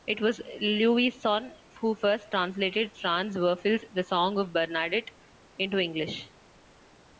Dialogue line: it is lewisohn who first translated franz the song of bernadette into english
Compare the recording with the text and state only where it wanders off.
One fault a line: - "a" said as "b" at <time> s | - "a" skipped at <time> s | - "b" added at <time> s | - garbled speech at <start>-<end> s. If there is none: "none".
- "is" said as "was" at 0.2 s
- "werfel's" added at 3.4 s